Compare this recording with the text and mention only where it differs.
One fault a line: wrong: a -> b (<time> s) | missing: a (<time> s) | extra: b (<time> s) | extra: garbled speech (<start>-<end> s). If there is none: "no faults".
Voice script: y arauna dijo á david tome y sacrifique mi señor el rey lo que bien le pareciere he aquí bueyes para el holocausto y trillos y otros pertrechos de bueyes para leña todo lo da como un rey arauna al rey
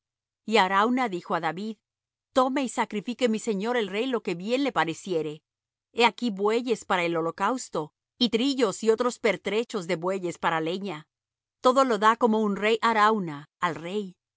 no faults